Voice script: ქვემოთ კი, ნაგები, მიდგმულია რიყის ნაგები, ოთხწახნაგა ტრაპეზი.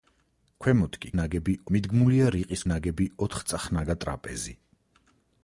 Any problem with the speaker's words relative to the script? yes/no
no